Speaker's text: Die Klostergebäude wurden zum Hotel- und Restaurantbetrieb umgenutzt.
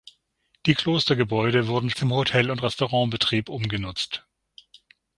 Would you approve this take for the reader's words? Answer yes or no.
yes